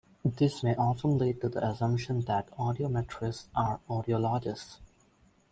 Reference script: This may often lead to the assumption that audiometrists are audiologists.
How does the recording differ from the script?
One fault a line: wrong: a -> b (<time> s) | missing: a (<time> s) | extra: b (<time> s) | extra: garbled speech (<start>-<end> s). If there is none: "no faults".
no faults